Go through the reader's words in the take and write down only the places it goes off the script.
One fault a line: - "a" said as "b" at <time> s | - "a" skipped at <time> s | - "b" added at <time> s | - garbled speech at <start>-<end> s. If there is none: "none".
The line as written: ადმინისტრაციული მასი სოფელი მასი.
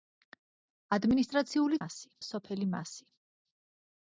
none